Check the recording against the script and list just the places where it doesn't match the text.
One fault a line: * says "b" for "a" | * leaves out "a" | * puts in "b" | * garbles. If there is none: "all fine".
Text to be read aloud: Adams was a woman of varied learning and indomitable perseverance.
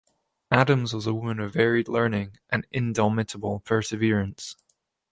all fine